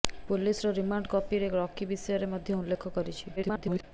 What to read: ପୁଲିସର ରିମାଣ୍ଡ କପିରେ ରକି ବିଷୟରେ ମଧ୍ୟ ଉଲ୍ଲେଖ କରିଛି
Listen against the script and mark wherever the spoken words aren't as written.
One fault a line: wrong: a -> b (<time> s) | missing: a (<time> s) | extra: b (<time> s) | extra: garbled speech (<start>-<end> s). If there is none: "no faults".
extra: garbled speech (3.4-3.8 s)